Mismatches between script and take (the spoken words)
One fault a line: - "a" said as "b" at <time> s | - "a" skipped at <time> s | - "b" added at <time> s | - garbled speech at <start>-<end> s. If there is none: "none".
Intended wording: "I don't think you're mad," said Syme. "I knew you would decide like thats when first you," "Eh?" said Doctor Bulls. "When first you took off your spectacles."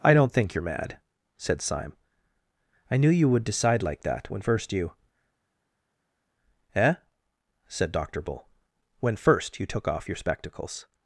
- "thats" said as "that" at 4.0 s
- "Bulls" said as "Bull" at 8.2 s